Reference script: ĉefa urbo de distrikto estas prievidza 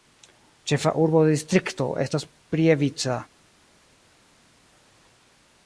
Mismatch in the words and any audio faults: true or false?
false